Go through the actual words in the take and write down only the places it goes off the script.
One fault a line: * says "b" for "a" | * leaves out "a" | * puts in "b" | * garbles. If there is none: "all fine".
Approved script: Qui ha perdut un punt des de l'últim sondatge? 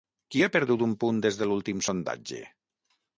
all fine